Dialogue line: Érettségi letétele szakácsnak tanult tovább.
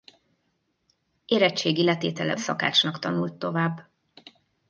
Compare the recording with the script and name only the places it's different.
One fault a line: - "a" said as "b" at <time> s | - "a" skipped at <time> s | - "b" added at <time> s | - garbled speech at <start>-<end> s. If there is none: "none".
none